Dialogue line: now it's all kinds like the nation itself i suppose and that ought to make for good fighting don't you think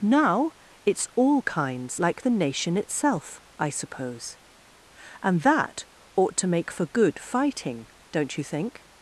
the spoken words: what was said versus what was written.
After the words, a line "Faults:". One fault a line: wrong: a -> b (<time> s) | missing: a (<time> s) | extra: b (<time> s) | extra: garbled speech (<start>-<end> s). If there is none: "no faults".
now it's all kinds like the nation itself i suppose and that ought to make for good fighting don't you think
Faults:
no faults